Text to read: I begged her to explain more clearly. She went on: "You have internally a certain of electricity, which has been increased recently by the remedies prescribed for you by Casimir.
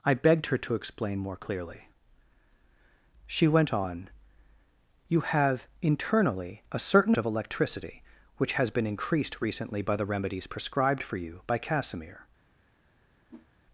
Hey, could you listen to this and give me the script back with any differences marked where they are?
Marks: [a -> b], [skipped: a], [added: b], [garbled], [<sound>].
I begged her to explain more clearly. She went on: "You have internally a certain of electricity, which has been increased recently by the remedies prescribed for you by Casimir. [whoosh]